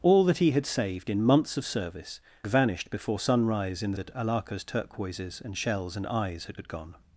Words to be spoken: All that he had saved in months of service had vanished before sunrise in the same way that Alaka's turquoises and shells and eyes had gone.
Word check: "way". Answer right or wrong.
wrong